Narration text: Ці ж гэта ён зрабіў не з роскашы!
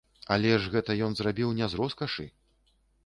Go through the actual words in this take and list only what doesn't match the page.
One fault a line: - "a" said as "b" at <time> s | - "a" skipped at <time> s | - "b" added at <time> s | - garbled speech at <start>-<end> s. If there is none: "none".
- "Ці" said as "Але" at 0.3 s